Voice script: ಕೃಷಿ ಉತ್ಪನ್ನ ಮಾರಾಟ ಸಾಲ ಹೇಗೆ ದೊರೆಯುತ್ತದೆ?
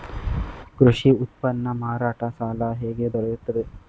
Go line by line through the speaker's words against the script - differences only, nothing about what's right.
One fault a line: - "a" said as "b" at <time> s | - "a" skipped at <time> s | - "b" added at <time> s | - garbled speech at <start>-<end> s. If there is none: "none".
none